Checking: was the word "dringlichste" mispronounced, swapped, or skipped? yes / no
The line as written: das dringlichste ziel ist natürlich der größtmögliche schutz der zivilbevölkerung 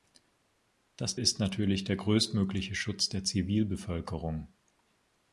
yes